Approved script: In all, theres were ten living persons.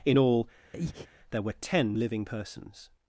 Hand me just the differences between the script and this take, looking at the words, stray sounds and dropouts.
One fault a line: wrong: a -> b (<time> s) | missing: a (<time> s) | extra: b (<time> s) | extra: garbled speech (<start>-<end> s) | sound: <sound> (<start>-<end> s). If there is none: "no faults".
sound: breath (0.7-1.1 s)
wrong: theres -> there (1.3 s)